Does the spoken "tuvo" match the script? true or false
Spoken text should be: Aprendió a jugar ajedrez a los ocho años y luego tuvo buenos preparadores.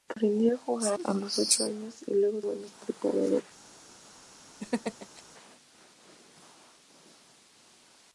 false